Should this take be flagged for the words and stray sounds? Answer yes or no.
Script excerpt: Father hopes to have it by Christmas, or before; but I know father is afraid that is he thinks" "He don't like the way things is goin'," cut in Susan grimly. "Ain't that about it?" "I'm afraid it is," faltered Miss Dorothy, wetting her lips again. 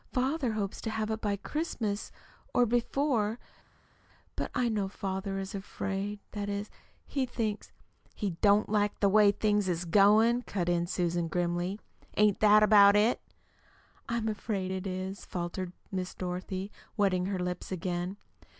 no